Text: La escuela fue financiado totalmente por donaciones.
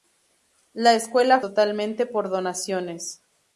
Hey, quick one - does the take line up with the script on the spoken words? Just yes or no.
no